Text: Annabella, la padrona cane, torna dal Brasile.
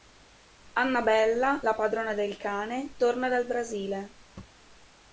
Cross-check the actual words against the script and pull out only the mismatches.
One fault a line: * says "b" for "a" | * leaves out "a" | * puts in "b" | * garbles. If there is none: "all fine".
* puts in "del"